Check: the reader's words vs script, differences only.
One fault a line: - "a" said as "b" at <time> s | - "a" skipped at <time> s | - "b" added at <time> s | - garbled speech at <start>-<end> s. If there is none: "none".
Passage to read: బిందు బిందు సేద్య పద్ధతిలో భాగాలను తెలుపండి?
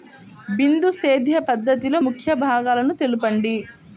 - "బిందు" skipped at 0.9 s
- "ముఖ్య" added at 2.1 s